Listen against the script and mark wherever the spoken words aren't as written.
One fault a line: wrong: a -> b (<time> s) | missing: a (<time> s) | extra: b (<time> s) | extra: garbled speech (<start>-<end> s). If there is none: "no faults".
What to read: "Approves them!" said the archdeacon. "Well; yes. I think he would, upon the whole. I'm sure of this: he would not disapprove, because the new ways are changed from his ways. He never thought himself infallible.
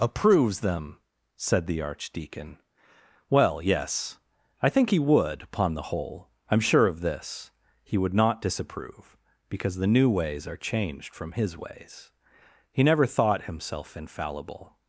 no faults